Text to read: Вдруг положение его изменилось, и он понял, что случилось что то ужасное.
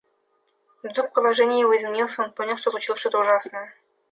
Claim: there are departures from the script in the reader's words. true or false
false